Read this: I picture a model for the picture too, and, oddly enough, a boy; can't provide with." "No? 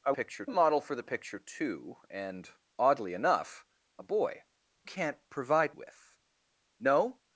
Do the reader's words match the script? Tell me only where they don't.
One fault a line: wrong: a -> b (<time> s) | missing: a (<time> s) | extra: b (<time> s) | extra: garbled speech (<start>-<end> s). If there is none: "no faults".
no faults